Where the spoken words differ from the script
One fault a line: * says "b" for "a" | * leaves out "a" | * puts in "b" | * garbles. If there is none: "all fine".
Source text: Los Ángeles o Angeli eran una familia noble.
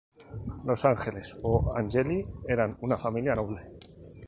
all fine